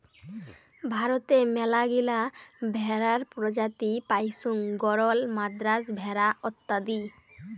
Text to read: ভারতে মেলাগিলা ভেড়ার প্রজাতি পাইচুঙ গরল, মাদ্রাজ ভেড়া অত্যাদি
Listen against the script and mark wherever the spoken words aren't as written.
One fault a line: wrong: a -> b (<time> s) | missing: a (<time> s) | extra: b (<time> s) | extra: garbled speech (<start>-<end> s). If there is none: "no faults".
no faults